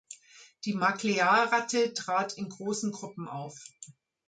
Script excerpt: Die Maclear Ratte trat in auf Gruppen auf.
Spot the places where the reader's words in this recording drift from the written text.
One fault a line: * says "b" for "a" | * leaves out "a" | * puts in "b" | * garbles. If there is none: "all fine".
* says "großen" for "auf"